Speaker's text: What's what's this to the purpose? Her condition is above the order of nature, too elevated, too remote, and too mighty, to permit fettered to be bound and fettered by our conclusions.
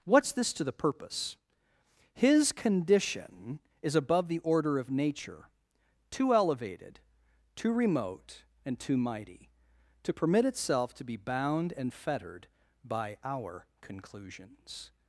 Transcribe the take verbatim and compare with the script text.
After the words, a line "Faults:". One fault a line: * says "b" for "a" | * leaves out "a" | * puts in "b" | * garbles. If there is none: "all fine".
What's this to the purpose? His condition is above the order of nature, too elevated, too remote, and too mighty, to permit itself to be bound and fettered by our conclusions.
Faults:
* leaves out "what's"
* says "His" for "Her"
* says "itself" for "fettered"